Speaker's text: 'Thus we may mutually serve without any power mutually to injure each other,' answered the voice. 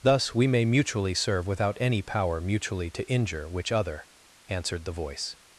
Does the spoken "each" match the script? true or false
false